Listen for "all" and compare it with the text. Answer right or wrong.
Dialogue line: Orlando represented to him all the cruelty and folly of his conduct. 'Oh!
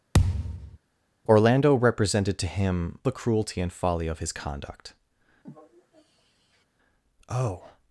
wrong